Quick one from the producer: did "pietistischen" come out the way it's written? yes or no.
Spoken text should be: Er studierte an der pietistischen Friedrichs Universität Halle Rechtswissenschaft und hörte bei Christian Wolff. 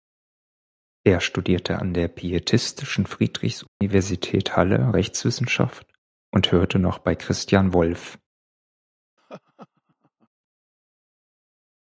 yes